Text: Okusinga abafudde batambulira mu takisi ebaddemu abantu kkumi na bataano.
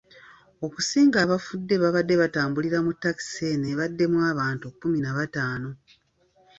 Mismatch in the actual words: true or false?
true